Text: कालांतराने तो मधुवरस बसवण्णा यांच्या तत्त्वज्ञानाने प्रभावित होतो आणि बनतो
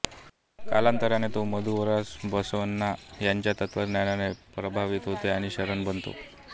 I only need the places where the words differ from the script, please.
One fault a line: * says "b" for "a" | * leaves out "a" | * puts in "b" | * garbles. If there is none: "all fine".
* puts in "शरण"